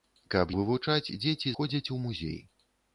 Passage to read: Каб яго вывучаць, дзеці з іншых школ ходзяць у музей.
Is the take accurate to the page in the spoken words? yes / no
no